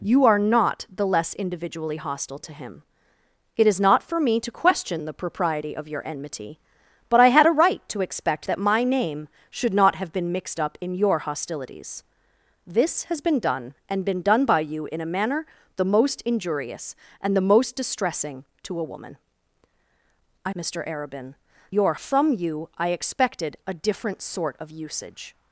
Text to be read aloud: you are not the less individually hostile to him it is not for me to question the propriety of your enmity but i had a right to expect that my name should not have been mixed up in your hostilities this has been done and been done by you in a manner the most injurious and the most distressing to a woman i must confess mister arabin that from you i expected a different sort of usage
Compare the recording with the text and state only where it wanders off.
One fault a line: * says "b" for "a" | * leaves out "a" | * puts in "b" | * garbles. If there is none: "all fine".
* leaves out "must confess"
* says "your" for "that"